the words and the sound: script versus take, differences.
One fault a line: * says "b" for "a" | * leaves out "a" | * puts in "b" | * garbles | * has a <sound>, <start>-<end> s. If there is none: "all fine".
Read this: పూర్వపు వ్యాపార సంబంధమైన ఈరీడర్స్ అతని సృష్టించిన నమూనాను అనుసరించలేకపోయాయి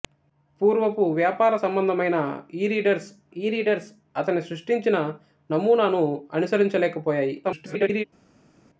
* puts in "ఈరీడర్స్"
* garbles